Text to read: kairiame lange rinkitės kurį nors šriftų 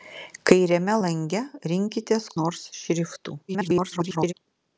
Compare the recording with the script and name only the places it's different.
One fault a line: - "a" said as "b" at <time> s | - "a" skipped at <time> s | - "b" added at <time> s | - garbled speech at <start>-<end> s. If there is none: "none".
- "kurį" skipped at 2.3 s
- garbled speech at 3.5-4.3 s